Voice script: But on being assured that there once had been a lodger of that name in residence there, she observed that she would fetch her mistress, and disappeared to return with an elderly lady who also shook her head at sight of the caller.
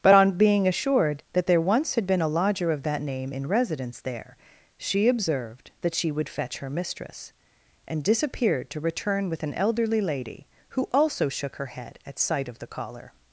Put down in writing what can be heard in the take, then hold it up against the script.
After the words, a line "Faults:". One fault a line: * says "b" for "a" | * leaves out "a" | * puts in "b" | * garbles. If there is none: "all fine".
But on being assured that there once had been a lodger of that name in residence there, she observed that she would fetch her mistress, and disappeared to return with an elderly lady who also shook her head at sight of the caller.
Faults:
all fine